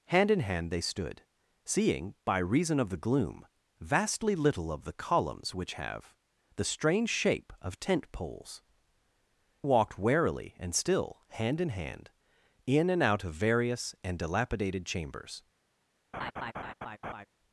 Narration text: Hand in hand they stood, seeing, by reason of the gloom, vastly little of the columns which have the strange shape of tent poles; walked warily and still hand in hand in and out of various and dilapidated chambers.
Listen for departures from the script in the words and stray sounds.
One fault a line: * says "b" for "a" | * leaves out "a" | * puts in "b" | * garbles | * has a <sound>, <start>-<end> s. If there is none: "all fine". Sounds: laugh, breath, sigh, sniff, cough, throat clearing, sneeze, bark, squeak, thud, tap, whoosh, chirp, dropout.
* has a laugh, 16.1-17.3 s